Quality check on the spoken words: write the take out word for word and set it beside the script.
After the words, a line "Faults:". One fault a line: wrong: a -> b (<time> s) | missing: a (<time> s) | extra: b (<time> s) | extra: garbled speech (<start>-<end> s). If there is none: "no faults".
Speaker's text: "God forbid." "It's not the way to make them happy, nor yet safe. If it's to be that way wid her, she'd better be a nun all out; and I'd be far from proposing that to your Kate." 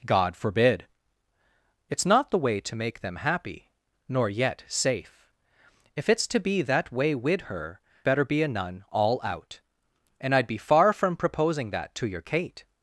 "God forbid." "It's not the way to make them happy, nor yet safe. If it's to be that way wid her, better be a nun all out; and I'd be far from proposing that to your Kate."
Faults:
missing: she'd (7.8 s)